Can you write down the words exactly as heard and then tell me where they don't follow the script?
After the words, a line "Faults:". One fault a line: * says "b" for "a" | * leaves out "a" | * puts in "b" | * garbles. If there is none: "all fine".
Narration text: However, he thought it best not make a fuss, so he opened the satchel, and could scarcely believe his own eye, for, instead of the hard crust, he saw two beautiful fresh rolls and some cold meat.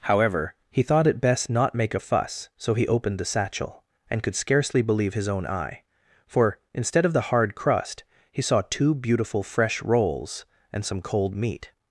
However, he thought it best not make a fuss, so he opened the satchel, and could scarcely believe his own eye, for, instead of the hard crust, he saw two beautiful fresh rolls and some cold meat.
Faults:
all fine